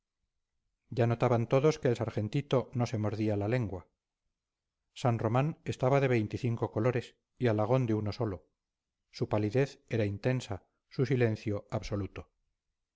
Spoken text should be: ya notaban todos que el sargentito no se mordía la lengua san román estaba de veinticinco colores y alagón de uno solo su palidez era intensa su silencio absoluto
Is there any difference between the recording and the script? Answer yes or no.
no